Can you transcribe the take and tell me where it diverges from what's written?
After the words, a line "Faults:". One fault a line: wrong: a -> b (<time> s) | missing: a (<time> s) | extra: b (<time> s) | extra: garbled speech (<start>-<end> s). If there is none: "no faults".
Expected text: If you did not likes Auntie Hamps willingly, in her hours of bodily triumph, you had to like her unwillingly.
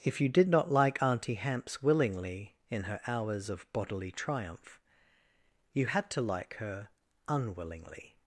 If you did not like Auntie Hamps willingly, in her hours of bodily triumph, you had to like her unwillingly.
Faults:
wrong: likes -> like (0.7 s)